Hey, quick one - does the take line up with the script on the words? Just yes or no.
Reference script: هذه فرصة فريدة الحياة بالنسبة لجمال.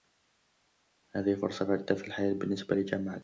no